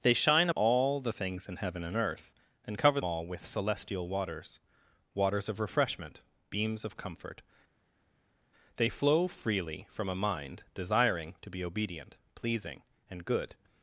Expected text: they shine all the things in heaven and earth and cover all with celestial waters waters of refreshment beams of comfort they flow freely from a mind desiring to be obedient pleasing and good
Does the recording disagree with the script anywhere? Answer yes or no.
no